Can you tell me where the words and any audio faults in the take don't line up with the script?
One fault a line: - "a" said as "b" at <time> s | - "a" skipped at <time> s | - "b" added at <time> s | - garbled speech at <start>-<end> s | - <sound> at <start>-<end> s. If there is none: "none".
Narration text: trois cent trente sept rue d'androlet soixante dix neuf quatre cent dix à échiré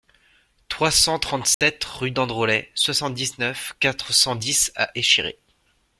- dropout at 1.5-1.6 s